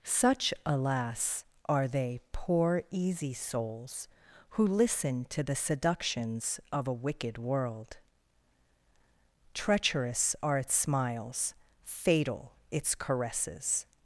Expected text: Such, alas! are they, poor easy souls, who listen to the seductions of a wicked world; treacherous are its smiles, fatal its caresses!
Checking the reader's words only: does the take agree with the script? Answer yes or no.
yes